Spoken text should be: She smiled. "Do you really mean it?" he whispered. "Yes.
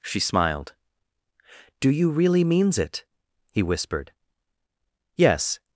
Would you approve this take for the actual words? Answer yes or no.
no